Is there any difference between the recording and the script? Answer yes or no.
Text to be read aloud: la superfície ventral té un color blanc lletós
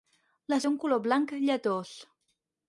yes